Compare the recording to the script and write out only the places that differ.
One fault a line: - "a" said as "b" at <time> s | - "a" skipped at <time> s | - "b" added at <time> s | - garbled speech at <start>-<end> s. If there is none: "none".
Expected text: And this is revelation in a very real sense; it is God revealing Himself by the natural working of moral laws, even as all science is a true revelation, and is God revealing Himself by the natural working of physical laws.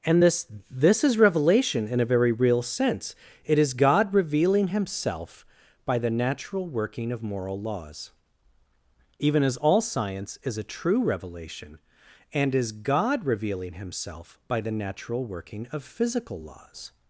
- "this" added at 0.7 s